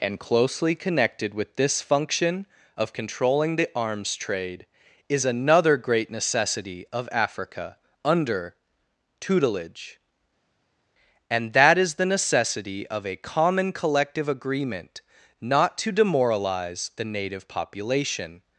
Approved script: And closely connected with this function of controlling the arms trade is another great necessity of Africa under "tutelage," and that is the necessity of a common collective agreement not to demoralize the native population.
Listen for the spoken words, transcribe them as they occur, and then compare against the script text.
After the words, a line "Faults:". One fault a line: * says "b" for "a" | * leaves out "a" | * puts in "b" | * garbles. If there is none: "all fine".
And closely connected with this function of controlling the arms trade is another great necessity of Africa under "tutelage," and that is the necessity of a common collective agreement not to demoralize the native population.
Faults:
all fine